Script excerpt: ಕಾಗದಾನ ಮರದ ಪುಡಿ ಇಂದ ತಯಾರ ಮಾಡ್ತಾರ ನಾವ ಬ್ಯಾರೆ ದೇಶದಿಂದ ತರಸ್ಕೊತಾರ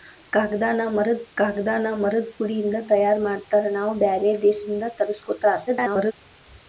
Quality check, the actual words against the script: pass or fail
fail